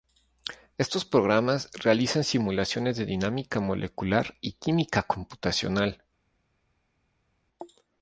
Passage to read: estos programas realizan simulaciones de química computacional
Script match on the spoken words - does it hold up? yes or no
no